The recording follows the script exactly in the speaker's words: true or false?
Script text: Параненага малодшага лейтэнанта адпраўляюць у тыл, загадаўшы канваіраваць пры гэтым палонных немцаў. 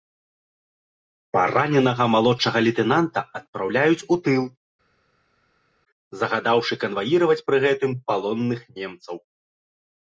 true